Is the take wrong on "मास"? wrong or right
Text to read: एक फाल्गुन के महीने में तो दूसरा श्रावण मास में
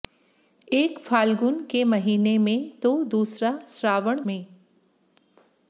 wrong